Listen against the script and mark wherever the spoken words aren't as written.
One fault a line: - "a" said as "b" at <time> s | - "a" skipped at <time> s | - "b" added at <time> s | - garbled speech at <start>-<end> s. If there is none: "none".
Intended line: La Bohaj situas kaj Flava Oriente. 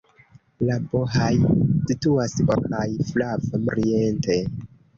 none